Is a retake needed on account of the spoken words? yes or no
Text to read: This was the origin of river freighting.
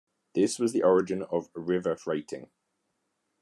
no